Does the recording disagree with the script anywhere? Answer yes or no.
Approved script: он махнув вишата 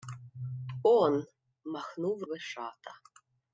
no